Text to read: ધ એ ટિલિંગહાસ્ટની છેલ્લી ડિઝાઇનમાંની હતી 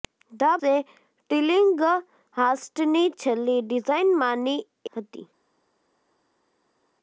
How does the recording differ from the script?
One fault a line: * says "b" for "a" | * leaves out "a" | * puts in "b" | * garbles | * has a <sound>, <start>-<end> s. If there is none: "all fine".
all fine